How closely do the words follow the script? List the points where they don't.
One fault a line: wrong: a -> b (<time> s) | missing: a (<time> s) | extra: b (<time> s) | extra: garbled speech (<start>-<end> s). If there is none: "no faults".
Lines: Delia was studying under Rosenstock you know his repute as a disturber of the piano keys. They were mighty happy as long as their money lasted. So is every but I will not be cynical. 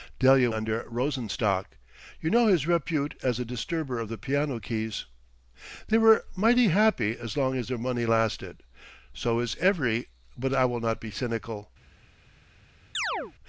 missing: was studying (0.5 s)